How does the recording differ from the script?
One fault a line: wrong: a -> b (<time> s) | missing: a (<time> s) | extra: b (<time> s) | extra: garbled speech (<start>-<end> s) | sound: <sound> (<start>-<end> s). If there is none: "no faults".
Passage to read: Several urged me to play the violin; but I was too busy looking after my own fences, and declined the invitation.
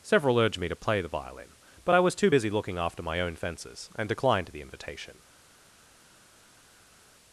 no faults